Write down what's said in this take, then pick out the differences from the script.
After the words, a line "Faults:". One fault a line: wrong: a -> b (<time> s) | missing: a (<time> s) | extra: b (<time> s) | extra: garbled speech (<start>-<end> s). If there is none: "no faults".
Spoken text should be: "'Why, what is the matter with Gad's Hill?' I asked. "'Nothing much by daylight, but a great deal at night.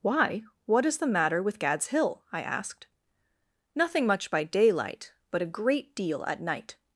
"'Why, what is the matter with Gad's Hill?' I asked. "'Nothing much by daylight, but a great deal at night.
Faults:
no faults